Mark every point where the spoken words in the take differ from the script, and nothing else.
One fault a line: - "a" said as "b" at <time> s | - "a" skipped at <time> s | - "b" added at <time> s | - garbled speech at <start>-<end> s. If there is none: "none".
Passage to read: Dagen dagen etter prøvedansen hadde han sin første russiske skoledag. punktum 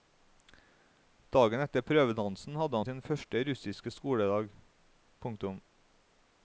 - "dagen" skipped at 1.6 s